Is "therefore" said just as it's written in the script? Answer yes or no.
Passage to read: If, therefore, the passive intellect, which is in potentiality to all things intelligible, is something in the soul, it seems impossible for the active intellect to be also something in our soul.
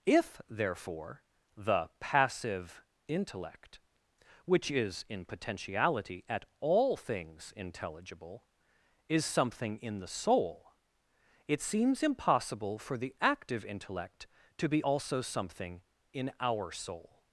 yes